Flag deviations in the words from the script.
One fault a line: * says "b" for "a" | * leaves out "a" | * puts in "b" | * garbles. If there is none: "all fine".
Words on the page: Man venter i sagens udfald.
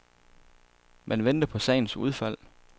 * says "på" for "i"